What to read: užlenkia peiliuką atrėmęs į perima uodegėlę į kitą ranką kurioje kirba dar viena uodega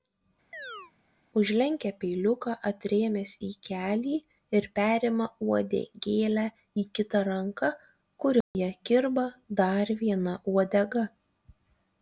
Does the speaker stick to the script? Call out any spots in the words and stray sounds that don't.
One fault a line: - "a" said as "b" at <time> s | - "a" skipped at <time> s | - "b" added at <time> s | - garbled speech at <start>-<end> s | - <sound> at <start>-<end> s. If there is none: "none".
- chirp at 0.5-0.9 s
- "kelį ir" added at 3.7 s
- dropout at 8.4-8.6 s